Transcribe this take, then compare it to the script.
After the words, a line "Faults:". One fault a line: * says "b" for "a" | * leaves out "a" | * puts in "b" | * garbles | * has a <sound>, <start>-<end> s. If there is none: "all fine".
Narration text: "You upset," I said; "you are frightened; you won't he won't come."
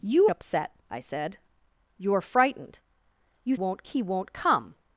"You upset," I said; "you are frightened; you won't he won't come."
Faults:
all fine